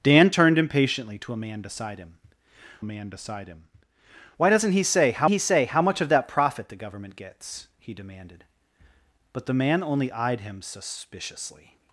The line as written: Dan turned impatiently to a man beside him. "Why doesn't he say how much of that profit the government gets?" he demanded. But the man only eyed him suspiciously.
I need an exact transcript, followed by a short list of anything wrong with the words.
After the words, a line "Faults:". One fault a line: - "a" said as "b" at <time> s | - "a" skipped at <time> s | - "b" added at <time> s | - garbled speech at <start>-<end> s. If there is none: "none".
Dan turned impatiently to a man beside him man beside him. "Why doesn't he say how he say how much of that profit the government gets?" he demanded. But the man only eyed him suspiciously.
Faults:
- "man beside him" added at 2.8 s
- "he say how" added at 5.3 s